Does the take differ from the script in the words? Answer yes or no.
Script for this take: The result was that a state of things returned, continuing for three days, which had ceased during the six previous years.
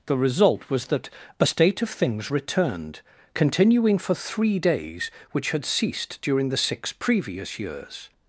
no